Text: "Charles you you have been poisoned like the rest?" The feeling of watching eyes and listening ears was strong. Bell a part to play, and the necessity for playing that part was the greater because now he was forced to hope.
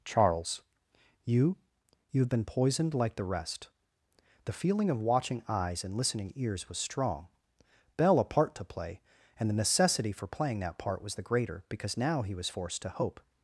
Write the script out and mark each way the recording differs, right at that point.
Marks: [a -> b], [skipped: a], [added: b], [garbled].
"Charles you you have been poisoned like the rest?" The feeling of watching eyes and listening ears was strong. Bell a part to play, and the necessity for playing that part was the greater because now he was forced to hope.